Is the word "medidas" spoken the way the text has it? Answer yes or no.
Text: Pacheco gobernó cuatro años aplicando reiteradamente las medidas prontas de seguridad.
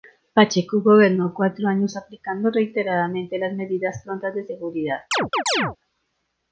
yes